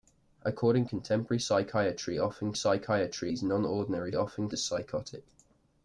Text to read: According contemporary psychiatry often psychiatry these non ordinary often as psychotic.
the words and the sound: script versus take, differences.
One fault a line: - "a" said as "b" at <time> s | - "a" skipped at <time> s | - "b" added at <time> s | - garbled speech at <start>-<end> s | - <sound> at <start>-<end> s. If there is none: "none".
none